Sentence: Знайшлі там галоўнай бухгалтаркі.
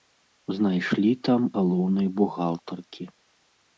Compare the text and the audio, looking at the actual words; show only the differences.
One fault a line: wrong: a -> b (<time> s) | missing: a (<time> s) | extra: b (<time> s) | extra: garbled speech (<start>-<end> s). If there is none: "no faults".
no faults